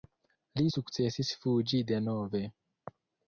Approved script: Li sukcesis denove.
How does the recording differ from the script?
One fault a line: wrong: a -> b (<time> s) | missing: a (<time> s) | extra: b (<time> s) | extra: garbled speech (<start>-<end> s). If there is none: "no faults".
extra: fuĝi (1.4 s)